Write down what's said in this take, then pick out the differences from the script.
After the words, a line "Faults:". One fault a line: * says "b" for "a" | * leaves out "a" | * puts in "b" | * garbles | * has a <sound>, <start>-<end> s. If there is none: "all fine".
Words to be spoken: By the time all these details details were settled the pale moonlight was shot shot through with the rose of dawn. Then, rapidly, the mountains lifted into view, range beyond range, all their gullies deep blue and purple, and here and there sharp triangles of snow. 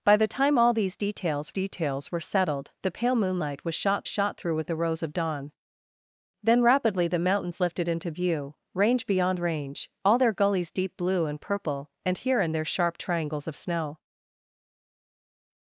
By the time all these details details were settled the pale moonlight was shot shot through with the rose of dawn. Then, rapidly, the mountains lifted into view, range beyond range, all their gullies deep blue and purple, and here and there sharp triangles of snow.
Faults:
all fine